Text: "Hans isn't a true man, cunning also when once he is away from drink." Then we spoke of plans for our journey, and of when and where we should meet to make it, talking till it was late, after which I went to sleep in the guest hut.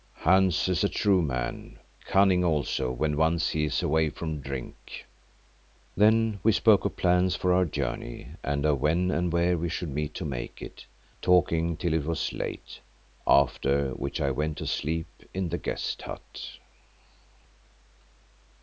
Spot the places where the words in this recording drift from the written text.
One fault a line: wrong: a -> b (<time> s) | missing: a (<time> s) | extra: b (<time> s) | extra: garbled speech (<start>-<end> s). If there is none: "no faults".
wrong: isn't -> is (0.7 s)